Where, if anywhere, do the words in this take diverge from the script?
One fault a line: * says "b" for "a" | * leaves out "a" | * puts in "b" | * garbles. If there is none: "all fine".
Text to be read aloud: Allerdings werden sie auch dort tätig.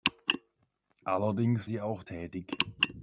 * leaves out "werden"
* leaves out "dort"